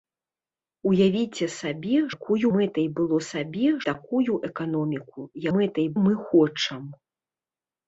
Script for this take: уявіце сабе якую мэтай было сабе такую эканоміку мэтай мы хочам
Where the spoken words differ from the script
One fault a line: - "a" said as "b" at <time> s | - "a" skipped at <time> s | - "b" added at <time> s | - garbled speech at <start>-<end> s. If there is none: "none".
none